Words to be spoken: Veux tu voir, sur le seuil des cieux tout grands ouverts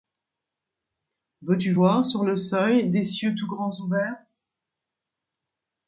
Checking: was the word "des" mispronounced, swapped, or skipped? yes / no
no